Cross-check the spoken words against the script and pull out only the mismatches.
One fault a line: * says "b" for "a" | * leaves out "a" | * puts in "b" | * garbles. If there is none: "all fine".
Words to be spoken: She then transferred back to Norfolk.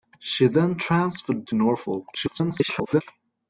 * leaves out "back"
* garbles